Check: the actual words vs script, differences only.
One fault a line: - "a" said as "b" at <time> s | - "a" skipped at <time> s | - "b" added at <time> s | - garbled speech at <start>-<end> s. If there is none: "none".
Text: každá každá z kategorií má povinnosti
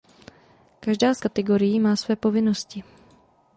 - "každá" skipped at 1.1 s
- "své" added at 1.9 s